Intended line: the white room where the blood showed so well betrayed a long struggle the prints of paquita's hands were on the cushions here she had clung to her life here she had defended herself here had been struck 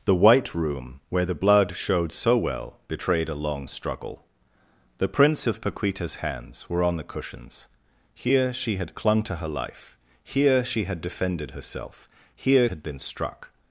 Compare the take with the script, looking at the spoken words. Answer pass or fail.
pass